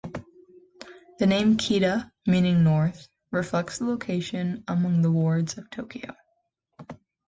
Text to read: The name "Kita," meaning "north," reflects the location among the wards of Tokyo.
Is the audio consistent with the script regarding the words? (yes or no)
yes